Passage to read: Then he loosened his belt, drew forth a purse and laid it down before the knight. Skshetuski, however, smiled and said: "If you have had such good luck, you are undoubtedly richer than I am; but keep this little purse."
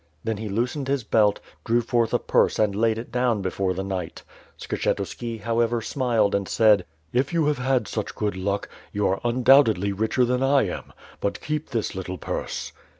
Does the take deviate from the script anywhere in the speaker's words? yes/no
no